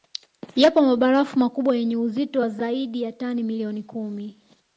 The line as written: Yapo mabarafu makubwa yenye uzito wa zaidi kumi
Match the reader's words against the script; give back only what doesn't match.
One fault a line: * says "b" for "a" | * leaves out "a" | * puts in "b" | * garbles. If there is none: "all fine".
* puts in "ya tani milioni"